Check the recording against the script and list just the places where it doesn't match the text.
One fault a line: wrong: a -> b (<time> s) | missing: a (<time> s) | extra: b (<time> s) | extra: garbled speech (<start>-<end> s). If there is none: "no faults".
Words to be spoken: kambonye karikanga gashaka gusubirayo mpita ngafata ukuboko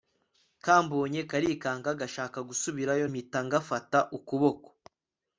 no faults